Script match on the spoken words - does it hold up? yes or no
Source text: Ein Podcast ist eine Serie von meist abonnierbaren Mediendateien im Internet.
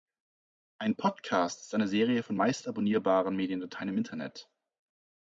yes